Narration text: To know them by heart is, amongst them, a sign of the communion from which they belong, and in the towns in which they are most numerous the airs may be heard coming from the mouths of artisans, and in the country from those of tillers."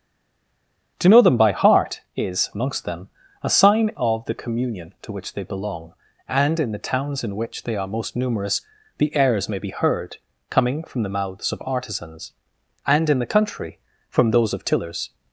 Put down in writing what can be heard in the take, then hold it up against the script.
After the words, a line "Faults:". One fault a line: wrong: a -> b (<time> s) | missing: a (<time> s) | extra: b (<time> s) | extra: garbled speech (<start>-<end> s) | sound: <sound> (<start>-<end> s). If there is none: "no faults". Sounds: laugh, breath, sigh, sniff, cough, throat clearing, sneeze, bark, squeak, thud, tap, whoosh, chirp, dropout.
To know them by heart is, amongst them, a sign of the communion to which they belong, and in the towns in which they are most numerous the airs may be heard coming from the mouths of artisans, and in the country from those of tillers."
Faults:
wrong: from -> to (5.0 s)